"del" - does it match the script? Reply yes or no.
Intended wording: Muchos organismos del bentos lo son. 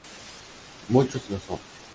no